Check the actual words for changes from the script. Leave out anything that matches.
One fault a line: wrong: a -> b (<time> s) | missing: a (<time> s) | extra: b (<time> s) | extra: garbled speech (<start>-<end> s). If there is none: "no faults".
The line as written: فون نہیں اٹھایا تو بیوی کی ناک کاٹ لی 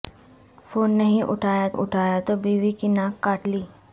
extra: اٹھایا (1.7 s)